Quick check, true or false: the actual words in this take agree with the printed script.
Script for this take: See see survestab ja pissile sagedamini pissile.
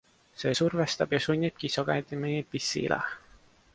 false